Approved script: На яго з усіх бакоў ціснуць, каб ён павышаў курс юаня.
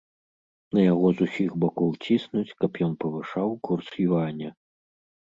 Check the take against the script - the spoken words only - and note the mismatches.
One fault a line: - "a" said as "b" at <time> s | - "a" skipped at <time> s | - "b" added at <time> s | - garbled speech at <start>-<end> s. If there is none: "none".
none